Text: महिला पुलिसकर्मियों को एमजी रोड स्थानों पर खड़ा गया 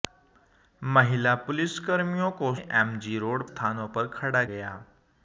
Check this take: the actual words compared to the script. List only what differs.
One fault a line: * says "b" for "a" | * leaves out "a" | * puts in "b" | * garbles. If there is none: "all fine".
all fine